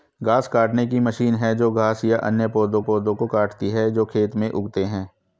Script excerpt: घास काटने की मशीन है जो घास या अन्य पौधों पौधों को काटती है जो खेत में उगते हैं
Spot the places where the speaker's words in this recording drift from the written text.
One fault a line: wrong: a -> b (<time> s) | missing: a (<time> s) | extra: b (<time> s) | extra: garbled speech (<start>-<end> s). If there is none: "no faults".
no faults